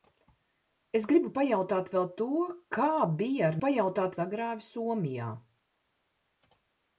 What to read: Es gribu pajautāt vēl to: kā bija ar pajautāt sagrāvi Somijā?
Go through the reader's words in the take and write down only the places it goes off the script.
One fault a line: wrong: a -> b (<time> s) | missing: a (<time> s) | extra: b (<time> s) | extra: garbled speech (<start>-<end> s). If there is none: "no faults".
no faults